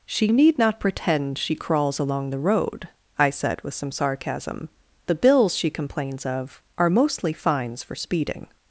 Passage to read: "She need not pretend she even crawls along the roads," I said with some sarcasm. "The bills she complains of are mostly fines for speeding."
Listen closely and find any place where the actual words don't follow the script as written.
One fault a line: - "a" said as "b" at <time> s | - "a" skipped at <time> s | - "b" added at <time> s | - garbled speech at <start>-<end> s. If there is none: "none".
- "even" skipped at 1.6 s
- "roads" said as "road" at 2.4 s